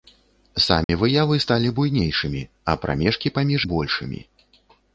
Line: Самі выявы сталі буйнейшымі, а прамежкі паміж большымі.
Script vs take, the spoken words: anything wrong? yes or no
no